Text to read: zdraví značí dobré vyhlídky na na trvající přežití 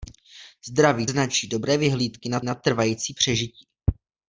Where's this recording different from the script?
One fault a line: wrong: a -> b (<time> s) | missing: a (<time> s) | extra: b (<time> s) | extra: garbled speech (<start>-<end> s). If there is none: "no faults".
no faults